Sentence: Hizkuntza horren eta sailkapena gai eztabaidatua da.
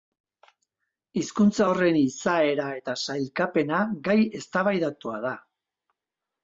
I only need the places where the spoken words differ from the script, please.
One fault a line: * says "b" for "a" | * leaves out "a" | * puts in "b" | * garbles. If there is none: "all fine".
* puts in "izaera"